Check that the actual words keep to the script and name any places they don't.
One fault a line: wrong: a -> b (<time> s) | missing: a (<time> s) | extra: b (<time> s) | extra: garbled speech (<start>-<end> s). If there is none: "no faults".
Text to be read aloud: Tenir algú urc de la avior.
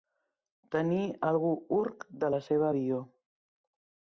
extra: seva (2.5 s)